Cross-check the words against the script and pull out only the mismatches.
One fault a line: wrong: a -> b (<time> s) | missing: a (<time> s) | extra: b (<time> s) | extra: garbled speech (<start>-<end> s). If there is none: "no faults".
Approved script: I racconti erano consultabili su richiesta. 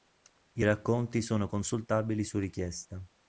wrong: erano -> sono (1.2 s)